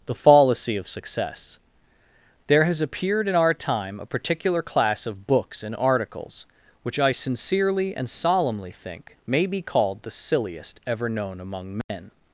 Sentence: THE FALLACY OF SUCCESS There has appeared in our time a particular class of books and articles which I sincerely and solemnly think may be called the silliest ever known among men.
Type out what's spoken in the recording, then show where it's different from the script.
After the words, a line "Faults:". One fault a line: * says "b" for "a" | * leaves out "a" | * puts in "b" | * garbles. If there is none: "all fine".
THE FALLACY OF SUCCESS There has appeared in our time a particular class of books and articles which I sincerely and solemnly think may be called the silliest ever known among men.
Faults:
all fine